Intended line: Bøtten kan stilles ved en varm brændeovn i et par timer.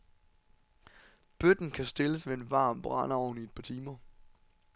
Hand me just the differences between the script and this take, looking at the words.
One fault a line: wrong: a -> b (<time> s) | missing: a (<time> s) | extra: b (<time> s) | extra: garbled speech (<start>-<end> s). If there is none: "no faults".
no faults